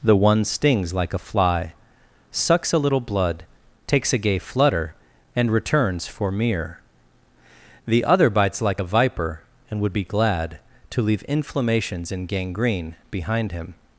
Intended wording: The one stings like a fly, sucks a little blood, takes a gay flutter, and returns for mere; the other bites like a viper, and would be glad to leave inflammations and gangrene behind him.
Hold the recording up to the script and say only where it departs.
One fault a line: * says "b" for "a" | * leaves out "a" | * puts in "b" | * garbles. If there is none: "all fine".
all fine